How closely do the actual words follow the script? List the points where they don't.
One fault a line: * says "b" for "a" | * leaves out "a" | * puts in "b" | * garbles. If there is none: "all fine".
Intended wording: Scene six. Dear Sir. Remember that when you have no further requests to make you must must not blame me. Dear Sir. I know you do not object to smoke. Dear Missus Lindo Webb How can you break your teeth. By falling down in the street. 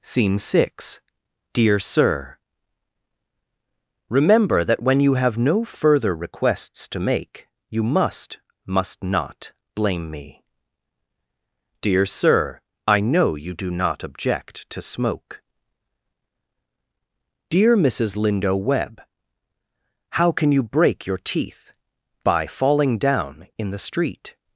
all fine